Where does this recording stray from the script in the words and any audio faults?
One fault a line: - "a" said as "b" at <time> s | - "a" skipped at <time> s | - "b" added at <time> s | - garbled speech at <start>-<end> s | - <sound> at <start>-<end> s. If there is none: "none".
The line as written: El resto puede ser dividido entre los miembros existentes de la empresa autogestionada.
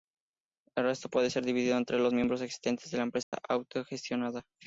- dropout at 3.2-3.3 s